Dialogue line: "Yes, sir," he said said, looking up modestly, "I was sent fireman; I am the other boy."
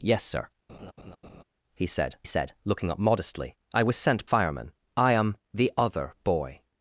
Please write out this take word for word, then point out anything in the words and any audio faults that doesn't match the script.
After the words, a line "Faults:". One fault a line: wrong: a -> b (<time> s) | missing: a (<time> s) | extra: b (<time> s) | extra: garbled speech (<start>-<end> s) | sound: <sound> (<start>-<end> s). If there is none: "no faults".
"Yes, sir," he said said, looking up modestly, "I was sent fireman; I am the other boy."
Faults:
sound: laugh (0.7-1.4 s)